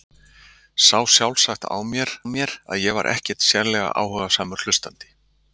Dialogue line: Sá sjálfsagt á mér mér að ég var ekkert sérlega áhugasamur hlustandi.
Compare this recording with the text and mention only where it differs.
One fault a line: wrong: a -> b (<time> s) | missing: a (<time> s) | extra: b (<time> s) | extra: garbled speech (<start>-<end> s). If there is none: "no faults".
no faults